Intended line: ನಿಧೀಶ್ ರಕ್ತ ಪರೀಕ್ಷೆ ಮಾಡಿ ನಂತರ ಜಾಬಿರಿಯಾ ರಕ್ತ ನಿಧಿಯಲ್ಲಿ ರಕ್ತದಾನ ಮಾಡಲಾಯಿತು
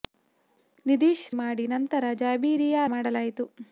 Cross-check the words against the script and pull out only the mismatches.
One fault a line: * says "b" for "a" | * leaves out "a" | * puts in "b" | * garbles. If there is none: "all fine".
* leaves out "ರಕ್ತ ಪರೀಕ್ಷೆ"
* leaves out "ರಕ್ತ ನಿಧಿಯಲ್ಲಿ ರಕ್ತದಾನ"